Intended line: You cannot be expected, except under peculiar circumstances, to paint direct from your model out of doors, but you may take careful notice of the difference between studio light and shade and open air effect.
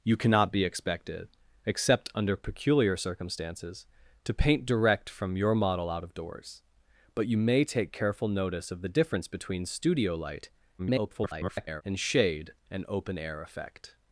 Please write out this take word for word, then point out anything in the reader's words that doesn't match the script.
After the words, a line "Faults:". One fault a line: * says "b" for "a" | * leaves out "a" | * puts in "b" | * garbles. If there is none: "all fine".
You cannot be expected, except under peculiar circumstances, to paint direct from your model out of doors, but you may take careful notice of the difference between studio light [garbled] and shade and open air effect.
Faults:
* garbles